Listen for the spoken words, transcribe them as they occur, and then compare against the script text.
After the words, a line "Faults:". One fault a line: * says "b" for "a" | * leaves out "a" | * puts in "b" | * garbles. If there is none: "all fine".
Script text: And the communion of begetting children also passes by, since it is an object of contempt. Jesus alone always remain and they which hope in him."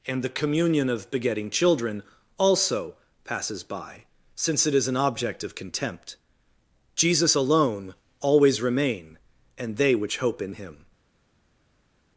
And the communion of begetting children also passes by, since it is an object of contempt. Jesus alone always remain and they which hope in him."
Faults:
all fine